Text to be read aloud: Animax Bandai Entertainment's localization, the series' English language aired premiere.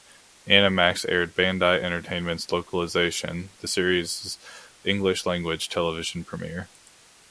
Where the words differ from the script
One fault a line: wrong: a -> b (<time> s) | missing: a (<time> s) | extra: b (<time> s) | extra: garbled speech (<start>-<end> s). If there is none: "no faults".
extra: aired (1.1 s)
wrong: aired -> television (5.7 s)